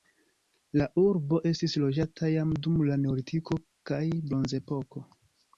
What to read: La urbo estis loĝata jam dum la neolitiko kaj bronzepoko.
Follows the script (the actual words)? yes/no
yes